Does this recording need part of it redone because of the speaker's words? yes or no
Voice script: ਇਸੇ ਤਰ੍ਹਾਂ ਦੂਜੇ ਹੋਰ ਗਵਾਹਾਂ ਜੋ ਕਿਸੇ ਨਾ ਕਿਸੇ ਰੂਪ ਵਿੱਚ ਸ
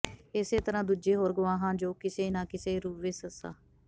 no